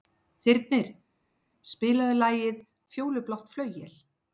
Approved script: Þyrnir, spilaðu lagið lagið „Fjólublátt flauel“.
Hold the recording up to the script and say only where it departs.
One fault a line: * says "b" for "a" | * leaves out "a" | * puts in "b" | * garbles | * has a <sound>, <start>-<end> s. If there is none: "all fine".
* leaves out "lagið"